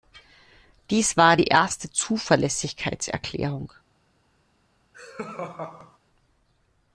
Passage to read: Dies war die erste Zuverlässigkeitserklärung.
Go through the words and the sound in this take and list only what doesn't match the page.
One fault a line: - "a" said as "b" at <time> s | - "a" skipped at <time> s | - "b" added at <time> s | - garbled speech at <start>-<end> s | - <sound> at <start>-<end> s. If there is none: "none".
- laugh at 4.9-6.0 s